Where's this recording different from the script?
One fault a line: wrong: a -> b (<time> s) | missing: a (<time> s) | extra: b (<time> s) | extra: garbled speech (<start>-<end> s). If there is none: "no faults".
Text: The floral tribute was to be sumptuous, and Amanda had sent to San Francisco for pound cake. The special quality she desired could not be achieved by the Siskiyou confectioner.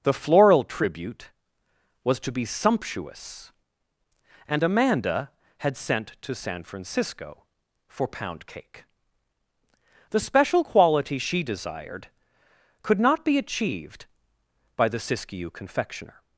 no faults